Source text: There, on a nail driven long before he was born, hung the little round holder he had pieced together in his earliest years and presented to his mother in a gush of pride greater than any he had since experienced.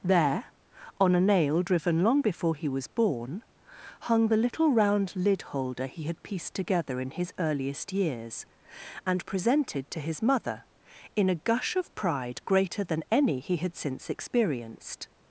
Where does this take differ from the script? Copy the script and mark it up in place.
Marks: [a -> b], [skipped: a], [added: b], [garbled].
There, on a nail driven long before he was born, hung the little round [added: lid] holder he had pieced together in his earliest years and presented to his mother in a gush of pride greater than any he had since experienced.